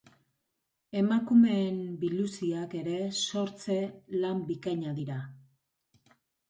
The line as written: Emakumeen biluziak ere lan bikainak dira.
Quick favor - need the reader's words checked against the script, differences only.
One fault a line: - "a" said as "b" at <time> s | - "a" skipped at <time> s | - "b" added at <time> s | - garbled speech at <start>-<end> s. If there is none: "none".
- "sortze" added at 3.3 s